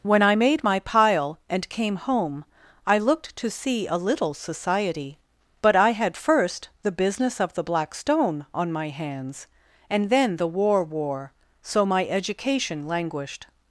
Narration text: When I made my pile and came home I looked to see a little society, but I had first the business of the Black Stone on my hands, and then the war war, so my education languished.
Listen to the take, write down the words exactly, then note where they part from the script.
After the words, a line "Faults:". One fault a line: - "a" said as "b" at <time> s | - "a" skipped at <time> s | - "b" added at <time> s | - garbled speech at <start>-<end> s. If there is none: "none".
When I made my pile and came home I looked to see a little society, but I had first the business of the Black Stone on my hands, and then the war war, so my education languished.
Faults:
none